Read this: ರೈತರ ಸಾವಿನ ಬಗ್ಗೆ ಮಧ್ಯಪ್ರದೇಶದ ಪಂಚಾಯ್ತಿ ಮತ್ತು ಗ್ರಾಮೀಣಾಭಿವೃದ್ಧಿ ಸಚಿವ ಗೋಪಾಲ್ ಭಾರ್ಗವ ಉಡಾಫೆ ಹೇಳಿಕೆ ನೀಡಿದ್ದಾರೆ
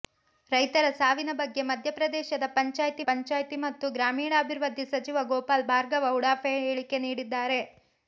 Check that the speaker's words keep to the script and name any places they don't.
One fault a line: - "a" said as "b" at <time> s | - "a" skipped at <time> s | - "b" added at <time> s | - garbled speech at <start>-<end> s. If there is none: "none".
- "ಪಂಚಾಯ್ತಿ" added at 3.1 s